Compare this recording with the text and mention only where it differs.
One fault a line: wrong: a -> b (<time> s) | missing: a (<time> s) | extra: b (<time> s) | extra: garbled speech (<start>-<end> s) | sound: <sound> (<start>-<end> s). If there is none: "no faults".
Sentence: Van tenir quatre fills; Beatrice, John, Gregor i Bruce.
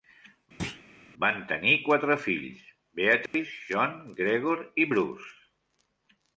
sound: thud (0.6-0.8 s)
sound: dropout (3.3-3.3 s)